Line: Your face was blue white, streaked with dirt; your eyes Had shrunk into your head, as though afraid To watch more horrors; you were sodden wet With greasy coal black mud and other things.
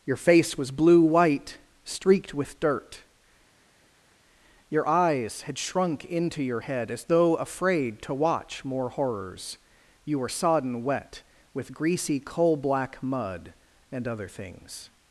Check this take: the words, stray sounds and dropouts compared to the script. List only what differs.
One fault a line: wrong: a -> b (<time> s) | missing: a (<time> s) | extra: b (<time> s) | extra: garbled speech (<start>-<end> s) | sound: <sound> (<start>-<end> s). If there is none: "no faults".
no faults